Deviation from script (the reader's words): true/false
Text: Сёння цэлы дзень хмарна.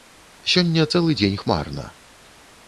false